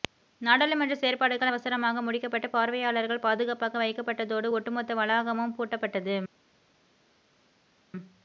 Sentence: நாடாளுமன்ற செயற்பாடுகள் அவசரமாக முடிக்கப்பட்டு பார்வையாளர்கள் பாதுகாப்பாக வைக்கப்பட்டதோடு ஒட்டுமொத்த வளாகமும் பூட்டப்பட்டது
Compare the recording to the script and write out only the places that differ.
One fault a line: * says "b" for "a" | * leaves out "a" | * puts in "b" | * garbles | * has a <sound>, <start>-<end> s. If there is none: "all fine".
all fine